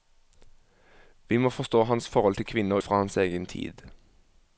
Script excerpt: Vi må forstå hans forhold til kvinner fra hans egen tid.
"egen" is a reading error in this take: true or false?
false